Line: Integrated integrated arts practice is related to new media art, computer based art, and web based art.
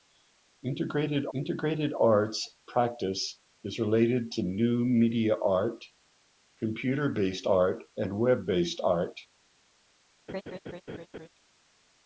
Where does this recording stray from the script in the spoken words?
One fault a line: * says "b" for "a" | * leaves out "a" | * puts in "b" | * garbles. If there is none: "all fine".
all fine